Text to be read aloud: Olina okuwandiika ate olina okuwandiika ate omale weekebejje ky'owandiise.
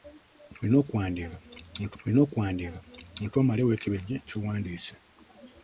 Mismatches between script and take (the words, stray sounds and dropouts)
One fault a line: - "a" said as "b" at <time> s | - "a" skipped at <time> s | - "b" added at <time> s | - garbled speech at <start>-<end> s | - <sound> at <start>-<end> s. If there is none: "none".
none